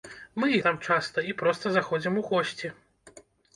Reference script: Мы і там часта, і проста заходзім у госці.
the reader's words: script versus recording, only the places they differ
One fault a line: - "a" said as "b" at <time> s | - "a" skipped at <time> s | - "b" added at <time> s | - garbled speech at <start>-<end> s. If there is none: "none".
none